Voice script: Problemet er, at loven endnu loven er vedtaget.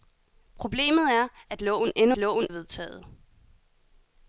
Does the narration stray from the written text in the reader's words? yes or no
no